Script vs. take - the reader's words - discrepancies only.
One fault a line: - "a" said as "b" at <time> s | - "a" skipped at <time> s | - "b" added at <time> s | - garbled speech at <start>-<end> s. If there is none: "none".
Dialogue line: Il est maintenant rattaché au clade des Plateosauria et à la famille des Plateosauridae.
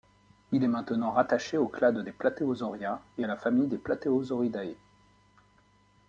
none